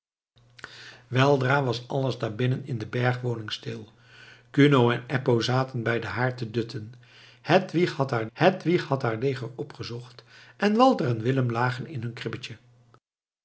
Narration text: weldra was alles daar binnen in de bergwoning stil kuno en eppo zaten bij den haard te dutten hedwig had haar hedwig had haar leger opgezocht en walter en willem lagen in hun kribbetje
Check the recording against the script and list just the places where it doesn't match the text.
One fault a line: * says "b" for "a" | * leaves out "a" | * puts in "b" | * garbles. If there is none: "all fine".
all fine